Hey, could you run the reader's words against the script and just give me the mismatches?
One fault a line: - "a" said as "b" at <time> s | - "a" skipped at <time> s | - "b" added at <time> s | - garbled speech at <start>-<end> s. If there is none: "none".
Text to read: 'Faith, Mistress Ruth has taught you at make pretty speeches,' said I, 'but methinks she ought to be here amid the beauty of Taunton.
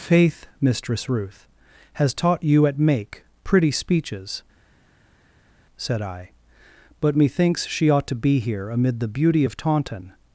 none